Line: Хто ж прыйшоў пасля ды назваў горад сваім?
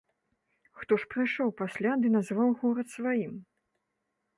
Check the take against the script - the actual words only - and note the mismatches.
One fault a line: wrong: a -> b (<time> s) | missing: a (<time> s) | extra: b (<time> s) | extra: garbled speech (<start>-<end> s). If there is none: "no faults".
no faults